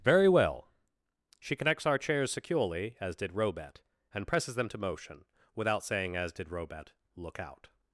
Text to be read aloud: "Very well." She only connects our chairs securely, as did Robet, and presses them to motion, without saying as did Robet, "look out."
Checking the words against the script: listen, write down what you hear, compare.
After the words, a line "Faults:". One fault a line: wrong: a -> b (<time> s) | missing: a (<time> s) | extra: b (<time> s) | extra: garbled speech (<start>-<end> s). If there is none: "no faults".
"Very well." She connects our chairs securely, as did Robet, and presses them to motion, without saying as did Robet, "look out."
Faults:
missing: only (1.6 s)